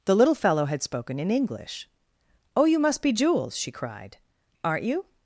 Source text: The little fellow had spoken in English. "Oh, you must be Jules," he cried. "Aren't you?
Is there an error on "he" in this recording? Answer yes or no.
yes